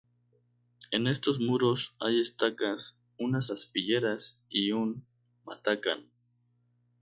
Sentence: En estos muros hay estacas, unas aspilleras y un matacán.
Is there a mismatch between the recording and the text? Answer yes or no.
no